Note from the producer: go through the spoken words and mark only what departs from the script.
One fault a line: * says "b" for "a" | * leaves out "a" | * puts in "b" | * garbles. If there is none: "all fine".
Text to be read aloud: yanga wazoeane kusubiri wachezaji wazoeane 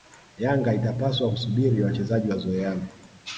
* says "itapaswa" for "wazoeane"